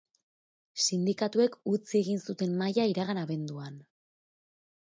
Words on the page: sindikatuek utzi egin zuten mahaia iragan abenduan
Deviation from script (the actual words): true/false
false